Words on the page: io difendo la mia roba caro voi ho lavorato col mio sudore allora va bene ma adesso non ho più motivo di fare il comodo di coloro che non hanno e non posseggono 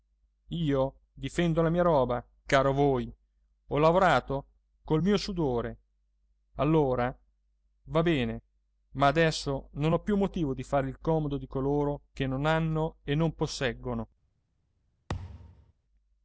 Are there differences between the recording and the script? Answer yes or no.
no